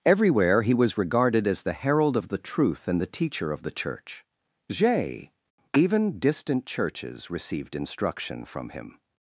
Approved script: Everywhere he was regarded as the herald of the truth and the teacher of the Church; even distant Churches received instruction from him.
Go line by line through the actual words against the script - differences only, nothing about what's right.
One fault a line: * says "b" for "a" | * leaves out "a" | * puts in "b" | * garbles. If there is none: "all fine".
* puts in "j"